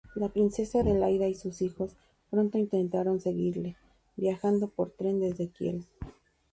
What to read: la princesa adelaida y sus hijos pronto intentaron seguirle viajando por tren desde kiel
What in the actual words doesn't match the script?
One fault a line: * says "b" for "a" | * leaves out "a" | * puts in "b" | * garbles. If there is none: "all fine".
all fine